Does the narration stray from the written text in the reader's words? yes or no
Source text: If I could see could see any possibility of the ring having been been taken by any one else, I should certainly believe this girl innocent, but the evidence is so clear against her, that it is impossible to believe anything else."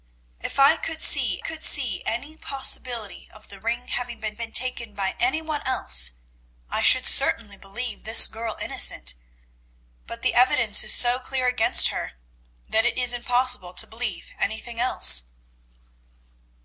no